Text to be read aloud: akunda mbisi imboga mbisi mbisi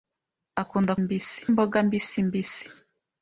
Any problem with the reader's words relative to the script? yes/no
no